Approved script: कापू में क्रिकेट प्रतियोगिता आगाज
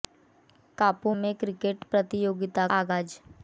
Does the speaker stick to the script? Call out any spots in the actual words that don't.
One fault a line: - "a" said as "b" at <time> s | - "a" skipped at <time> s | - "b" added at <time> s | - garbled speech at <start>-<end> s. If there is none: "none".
none